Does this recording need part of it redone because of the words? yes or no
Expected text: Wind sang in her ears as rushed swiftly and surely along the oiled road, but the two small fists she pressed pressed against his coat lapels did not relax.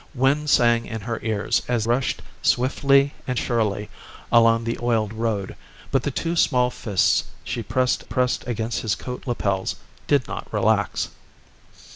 no